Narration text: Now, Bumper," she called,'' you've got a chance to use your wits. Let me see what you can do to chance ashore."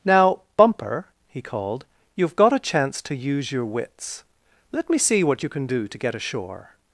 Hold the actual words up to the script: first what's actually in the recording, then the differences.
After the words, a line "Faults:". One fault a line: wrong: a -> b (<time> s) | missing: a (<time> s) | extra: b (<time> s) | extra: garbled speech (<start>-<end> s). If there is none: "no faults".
Now, Bumper," he called,'' you've got a chance to use your wits. Let me see what you can do to get ashore."
Faults:
wrong: she -> he (1.3 s)
wrong: chance -> get (6.0 s)